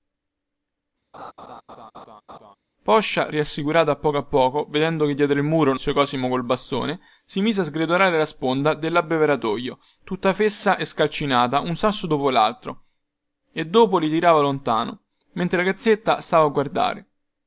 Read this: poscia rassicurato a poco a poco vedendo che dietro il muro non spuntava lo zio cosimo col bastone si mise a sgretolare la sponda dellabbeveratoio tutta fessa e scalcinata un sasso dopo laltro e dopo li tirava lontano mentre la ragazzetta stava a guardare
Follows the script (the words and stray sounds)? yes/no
no